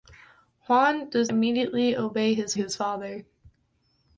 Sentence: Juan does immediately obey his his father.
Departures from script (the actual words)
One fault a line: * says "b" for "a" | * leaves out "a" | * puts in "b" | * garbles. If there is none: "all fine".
all fine